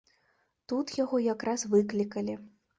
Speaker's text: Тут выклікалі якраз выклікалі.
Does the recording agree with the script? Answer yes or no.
no